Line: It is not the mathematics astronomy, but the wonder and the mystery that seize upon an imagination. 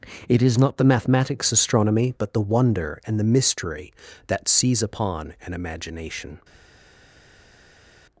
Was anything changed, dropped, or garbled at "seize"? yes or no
no